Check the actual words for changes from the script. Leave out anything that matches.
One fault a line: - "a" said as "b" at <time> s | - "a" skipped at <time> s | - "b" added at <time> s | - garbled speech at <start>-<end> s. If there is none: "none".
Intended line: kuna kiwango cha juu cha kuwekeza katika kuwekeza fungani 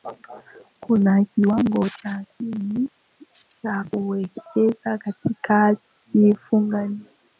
- "juu" said as "chini" at 2.4 s
- "kuwekeza" said as "hati" at 5.6 s